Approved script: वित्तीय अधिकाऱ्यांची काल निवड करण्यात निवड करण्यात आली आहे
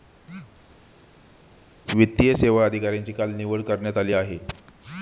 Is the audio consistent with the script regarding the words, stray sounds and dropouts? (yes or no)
no